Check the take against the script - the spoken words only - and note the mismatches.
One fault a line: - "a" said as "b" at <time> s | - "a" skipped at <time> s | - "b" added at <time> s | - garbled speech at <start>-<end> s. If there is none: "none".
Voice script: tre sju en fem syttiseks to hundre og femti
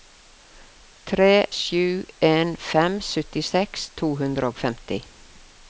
none